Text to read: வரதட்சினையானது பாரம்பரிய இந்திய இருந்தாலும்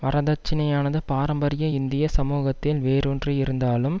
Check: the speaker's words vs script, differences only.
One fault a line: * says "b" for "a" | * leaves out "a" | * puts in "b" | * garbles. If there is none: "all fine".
* puts in "சமூகத்தில் வேரூன்றி"